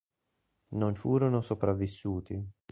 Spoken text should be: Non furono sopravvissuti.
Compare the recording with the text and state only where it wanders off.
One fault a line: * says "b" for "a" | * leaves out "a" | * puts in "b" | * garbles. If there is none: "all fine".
all fine